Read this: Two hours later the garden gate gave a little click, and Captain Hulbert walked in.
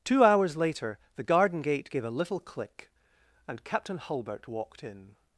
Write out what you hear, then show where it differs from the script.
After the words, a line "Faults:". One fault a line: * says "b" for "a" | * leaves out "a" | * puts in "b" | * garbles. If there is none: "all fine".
Two hours later the garden gate gave a little click, and Captain Hulbert walked in.
Faults:
all fine